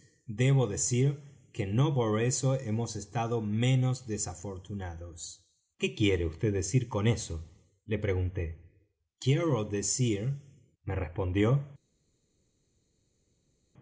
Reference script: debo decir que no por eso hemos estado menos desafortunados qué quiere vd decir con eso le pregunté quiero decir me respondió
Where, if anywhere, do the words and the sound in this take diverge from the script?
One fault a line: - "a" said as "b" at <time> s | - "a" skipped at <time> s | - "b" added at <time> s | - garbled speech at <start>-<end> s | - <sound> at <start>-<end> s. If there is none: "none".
none